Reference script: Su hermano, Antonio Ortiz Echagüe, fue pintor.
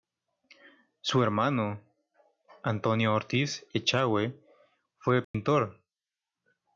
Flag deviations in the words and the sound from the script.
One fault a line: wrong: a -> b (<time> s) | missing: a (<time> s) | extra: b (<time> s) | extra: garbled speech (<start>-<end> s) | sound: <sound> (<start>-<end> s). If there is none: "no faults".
sound: dropout (5.2-5.3 s)